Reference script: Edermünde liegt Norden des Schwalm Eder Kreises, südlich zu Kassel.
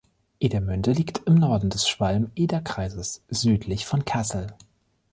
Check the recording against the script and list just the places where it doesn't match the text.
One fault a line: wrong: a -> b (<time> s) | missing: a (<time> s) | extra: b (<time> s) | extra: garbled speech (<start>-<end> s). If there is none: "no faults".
extra: im (1.3 s)
wrong: zu -> von (3.8 s)